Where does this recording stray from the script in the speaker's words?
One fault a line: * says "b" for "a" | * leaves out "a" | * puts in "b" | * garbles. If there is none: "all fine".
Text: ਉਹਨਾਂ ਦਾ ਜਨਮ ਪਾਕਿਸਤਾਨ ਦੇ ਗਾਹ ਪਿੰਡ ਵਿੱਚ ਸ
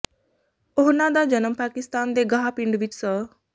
all fine